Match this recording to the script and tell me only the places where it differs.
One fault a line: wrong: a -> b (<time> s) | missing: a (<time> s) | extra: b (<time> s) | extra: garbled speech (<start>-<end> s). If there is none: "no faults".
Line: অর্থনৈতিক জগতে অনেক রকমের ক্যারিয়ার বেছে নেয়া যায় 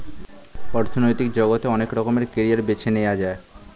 no faults